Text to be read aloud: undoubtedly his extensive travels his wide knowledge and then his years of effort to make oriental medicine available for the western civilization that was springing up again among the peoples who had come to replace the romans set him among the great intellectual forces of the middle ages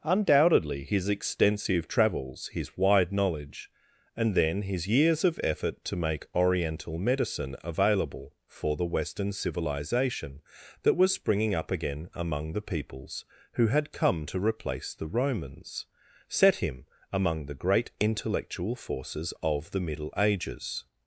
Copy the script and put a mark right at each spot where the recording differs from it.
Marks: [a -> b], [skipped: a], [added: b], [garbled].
undoubtedly his extensive travels his wide knowledge and then his years of effort to make oriental medicine available for the western civilization that was springing up again among the peoples who had come to replace the romans set him among the great intellectual forces of the middle ages